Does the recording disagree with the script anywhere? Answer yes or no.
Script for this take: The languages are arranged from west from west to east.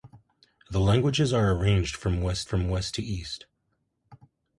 no